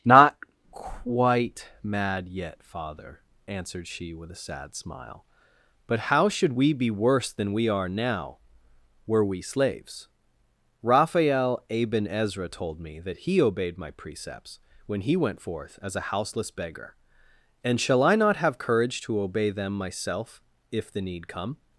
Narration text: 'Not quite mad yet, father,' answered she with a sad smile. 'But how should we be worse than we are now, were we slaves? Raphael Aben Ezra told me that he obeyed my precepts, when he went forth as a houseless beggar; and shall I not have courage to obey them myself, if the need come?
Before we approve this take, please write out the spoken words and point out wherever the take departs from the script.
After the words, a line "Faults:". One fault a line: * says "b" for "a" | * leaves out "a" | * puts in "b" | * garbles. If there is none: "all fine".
'Not quite mad yet, father,' answered she with a sad smile. 'But how should we be worse than we are now, were we slaves? Raphael Aben Ezra told me that he obeyed my precepts, when he went forth as a houseless beggar; and shall I not have courage to obey them myself, if the need come?
Faults:
all fine